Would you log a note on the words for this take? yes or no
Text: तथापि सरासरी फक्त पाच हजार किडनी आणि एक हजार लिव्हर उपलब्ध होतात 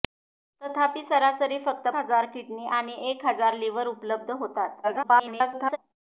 yes